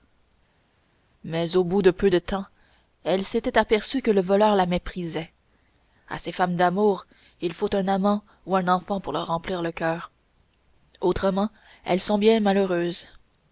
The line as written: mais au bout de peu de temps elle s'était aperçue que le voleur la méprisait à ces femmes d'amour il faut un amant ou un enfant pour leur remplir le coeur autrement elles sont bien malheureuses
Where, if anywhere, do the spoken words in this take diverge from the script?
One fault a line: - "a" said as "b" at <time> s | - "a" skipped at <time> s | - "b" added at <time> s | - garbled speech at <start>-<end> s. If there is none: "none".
none